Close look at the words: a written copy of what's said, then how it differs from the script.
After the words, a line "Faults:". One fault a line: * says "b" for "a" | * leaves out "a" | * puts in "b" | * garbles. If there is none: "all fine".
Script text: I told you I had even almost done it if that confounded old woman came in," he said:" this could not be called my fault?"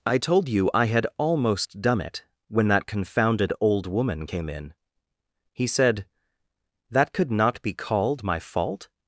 I told you I had almost done it when that confounded old woman came in," he said:" that could not be called my fault?"
Faults:
* leaves out "even"
* says "when" for "if"
* says "that" for "this"